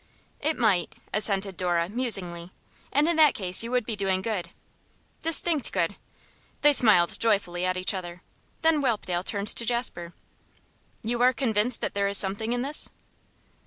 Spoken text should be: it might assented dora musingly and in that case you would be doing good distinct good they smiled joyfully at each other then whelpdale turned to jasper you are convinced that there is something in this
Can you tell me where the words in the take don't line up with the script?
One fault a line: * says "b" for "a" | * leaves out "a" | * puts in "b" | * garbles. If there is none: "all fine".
all fine